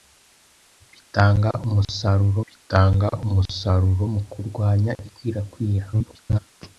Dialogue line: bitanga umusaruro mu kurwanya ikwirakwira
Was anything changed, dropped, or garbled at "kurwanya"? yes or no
no